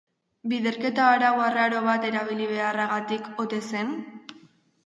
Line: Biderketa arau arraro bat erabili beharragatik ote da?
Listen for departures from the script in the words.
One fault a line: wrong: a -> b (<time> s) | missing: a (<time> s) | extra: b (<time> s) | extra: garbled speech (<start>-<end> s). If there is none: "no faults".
wrong: da -> zen (3.7 s)